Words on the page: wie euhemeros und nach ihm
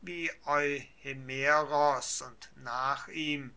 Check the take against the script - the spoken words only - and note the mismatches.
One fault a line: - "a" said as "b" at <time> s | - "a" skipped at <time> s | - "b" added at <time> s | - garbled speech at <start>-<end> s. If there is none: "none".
none